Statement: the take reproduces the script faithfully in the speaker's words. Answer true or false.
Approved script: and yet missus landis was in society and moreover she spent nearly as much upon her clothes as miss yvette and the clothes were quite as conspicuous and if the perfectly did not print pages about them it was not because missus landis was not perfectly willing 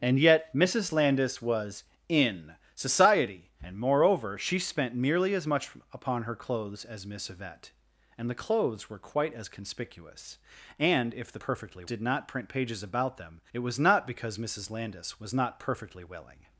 true